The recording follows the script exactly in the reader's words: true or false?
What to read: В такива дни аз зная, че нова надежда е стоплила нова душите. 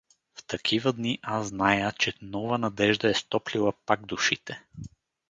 false